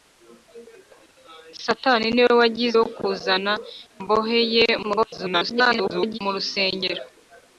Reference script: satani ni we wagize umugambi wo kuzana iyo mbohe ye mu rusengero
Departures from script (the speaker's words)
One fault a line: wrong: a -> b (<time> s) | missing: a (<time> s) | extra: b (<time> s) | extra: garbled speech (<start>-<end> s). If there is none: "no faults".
missing: umugambi (2.8 s)
missing: iyo (3.5 s)
extra: garbled speech (4.8-6.2 s)